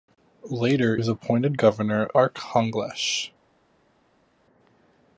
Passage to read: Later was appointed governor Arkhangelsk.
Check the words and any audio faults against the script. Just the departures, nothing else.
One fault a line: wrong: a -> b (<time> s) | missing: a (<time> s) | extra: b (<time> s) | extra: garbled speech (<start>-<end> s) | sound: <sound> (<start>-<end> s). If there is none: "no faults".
no faults